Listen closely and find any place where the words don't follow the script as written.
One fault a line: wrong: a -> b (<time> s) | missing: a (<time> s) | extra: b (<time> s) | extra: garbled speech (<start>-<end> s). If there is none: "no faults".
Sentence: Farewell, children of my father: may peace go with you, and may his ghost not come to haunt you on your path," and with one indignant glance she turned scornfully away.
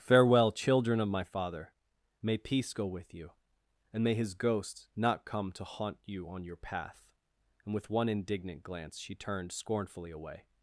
no faults